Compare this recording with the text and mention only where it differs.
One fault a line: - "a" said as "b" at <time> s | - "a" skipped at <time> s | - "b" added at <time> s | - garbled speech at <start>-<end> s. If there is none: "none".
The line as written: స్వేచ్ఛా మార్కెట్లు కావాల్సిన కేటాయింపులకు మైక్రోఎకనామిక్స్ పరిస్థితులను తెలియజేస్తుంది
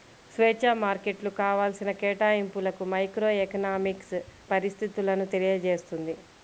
none